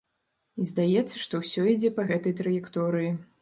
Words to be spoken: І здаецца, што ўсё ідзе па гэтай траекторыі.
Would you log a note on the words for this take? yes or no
no